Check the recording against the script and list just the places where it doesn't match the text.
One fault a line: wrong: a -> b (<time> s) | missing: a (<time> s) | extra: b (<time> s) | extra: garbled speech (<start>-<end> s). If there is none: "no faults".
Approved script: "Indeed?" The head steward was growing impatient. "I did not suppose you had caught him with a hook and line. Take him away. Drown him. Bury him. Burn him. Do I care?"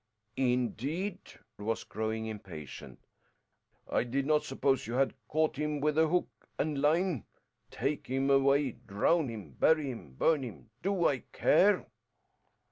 missing: The head steward (1.2 s)